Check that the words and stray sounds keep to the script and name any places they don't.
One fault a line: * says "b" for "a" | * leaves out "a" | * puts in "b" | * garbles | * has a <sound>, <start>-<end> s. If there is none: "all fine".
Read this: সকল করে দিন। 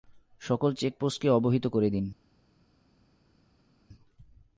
* puts in "চেকপোস্টকে অবহিত"